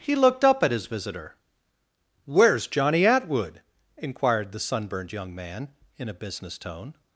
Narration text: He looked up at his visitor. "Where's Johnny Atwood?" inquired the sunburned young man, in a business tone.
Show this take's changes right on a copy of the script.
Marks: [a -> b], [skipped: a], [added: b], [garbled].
He looked up at his visitor. "Where's Johnny Atwood?" inquired the sunburned young man, in a business tone.